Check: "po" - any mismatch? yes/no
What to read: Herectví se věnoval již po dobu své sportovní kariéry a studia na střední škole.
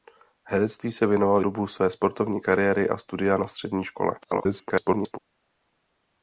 yes